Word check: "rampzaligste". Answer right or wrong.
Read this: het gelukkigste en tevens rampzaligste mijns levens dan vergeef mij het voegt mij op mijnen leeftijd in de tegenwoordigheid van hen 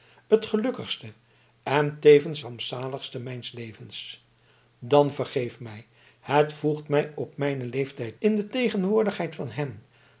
right